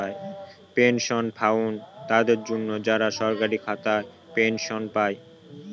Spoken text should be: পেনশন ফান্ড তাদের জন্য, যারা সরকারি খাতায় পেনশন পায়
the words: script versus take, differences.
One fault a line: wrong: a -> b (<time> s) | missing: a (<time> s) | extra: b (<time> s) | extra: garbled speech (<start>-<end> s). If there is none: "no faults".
no faults